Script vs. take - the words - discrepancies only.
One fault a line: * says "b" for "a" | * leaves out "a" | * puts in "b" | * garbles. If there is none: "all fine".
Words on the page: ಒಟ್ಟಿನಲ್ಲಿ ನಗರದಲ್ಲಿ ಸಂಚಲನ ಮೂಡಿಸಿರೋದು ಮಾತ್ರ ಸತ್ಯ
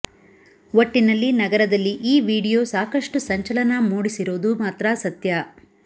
* puts in "ಈ ವಿಡಿಯೋ ಸಾಕಷ್ಟು"